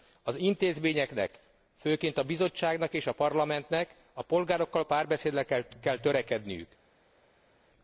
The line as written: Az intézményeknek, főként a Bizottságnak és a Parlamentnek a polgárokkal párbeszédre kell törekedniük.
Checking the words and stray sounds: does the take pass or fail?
pass